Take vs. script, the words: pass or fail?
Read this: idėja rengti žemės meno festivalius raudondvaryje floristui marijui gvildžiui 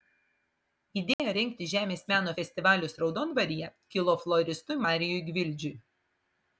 fail